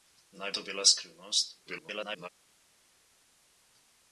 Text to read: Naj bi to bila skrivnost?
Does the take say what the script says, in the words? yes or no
no